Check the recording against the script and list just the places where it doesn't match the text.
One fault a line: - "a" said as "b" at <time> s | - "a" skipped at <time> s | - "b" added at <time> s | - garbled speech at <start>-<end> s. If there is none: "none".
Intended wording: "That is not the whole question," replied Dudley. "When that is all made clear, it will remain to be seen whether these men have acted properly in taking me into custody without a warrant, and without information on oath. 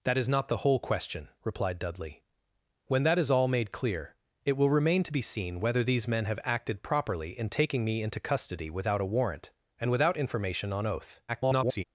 - garbled speech at 11.3-11.8 s